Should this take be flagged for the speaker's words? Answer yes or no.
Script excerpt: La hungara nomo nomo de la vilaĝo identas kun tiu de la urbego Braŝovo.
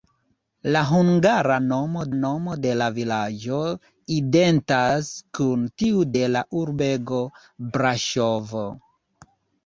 no